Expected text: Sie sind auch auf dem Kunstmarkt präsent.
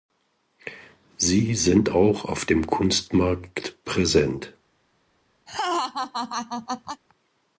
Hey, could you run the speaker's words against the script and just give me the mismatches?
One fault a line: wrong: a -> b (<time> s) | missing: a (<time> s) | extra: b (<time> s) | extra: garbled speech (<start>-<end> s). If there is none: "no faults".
no faults